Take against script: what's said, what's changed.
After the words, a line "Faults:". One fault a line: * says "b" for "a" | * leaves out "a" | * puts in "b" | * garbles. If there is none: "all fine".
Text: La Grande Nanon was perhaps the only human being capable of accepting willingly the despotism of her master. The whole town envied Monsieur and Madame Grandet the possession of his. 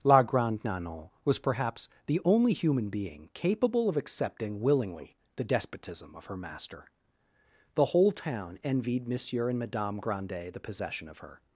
La Grande Nanon was perhaps the only human being capable of accepting willingly the despotism of her master. The whole town envied Monsieur and Madame Grandet the possession of her.
Faults:
* says "her" for "his"